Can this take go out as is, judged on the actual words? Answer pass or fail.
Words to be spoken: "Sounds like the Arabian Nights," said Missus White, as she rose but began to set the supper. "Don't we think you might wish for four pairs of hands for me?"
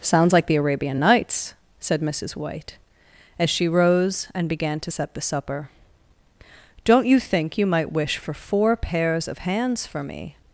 fail